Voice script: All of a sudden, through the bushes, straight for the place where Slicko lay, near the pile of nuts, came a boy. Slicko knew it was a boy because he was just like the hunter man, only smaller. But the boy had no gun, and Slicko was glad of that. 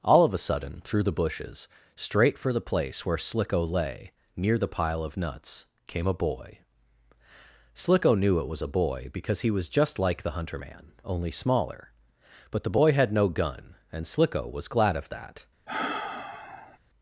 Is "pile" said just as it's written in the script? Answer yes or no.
yes